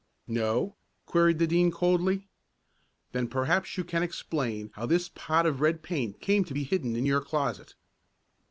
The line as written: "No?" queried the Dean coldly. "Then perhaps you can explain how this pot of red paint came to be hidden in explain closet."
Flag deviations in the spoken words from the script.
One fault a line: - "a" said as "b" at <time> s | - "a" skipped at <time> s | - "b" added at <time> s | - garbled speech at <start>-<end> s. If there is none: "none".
- "explain" said as "your" at 7.1 s